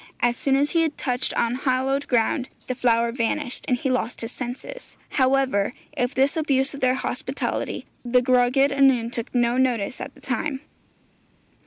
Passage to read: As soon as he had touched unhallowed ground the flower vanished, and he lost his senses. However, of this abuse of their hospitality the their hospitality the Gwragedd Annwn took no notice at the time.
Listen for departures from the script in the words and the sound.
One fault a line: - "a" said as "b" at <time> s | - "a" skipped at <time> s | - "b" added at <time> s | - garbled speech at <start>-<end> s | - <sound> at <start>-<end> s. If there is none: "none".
- "their hospitality the" skipped at 8.2 s